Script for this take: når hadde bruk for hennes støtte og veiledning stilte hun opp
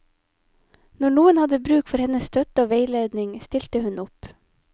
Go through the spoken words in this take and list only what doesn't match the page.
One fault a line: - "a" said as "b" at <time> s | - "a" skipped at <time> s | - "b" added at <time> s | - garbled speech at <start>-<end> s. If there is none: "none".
- "noen" added at 1.2 s